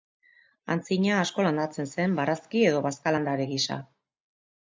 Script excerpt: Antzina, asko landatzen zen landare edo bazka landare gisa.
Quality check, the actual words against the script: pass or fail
fail